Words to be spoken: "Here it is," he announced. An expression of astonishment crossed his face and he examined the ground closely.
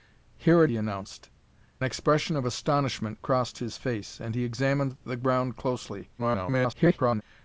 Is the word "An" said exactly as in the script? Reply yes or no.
no